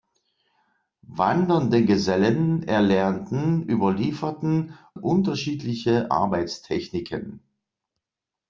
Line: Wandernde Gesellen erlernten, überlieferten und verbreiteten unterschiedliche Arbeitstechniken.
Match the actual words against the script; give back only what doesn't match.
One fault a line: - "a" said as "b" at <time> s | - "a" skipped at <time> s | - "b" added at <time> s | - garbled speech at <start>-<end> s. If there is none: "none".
- "und verbreiteten" skipped at 4.8 s